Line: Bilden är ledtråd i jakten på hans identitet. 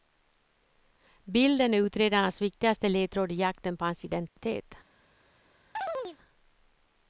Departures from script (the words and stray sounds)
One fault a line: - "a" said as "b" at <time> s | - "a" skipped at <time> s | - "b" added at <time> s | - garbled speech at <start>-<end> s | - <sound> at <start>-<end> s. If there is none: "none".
- "utredarnas viktigaste" added at 1.8 s
- dropout at 4.3-4.4 s
- chirp at 5.7-6.2 s